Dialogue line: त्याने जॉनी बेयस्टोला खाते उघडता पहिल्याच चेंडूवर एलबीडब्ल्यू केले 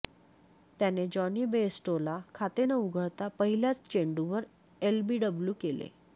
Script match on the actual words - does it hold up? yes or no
no